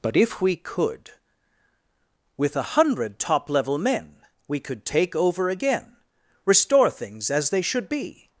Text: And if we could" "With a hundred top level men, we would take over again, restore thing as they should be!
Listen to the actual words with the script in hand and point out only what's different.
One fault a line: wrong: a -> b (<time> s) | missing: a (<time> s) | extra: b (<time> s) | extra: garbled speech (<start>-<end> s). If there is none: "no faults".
wrong: And -> But (0.0 s)
wrong: would -> could (4.6 s)
wrong: thing -> things (6.9 s)